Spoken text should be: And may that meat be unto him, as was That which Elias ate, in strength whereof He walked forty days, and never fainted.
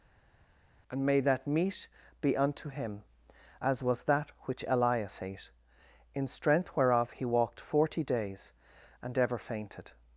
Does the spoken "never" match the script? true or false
false